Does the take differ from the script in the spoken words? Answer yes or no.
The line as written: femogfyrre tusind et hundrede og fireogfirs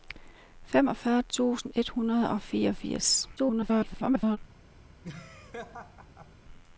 yes